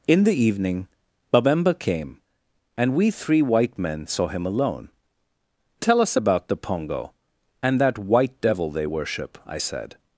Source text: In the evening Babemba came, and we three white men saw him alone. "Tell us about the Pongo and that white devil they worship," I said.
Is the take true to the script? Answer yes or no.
yes